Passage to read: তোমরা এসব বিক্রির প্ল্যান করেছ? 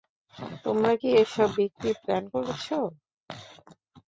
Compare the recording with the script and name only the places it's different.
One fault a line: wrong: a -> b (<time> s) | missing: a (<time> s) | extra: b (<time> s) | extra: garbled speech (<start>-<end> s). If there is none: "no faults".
extra: কি (1.0 s)